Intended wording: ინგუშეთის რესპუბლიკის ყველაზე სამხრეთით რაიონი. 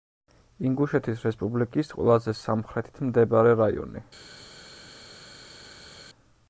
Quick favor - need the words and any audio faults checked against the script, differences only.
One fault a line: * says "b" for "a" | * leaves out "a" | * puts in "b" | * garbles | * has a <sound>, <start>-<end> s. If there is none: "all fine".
* puts in "მდებარე"